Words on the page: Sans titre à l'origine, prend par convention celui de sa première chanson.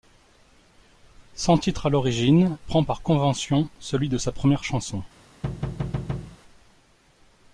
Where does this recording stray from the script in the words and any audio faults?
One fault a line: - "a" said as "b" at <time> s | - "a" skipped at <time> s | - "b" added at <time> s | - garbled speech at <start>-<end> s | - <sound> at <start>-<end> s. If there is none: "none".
- thud at 5.4-6.4 s